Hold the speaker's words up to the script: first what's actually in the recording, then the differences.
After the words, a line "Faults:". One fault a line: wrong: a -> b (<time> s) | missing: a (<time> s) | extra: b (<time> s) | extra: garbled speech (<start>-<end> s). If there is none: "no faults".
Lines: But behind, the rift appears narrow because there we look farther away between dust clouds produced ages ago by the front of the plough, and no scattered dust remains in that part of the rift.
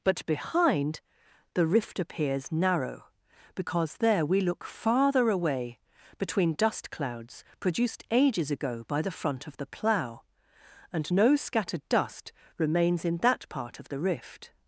But behind, the rift appears narrow because there we look farther away between dust clouds produced ages ago by the front of the plough, and no scattered dust remains in that part of the rift.
Faults:
no faults